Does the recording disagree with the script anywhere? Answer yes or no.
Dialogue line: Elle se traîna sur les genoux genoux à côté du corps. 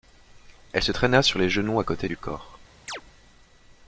yes